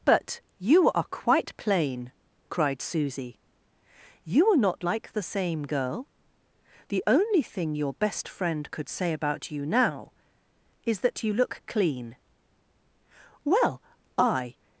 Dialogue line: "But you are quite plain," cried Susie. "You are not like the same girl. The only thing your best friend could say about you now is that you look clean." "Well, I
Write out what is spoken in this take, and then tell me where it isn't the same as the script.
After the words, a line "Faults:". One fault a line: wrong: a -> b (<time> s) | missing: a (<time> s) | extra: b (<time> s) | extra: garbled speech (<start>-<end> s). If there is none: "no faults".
"But you are quite plain," cried Susie. "You are not like the same girl. The only thing your best friend could say about you now is that you look clean." "Well, I
Faults:
no faults